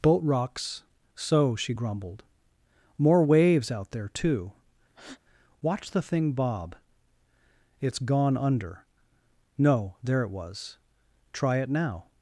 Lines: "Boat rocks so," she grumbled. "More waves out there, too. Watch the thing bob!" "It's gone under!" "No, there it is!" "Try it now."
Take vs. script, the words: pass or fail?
fail